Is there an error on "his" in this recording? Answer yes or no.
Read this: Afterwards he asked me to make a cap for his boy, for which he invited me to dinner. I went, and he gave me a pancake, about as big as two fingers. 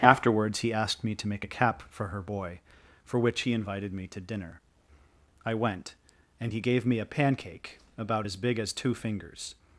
yes